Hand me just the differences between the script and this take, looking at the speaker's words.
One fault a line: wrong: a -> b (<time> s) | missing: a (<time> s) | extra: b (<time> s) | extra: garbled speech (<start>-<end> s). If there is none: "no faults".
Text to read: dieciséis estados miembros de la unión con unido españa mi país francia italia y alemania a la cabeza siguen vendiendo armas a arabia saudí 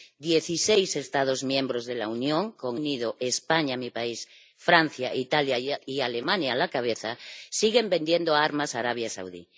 no faults